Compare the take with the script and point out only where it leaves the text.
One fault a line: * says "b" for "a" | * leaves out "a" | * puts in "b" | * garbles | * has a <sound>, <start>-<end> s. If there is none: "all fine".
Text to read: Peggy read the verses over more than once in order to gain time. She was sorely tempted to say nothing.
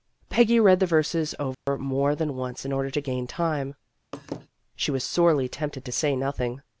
* has a dropout, 1.5-1.7 s
* has a laugh, 4.1-4.5 s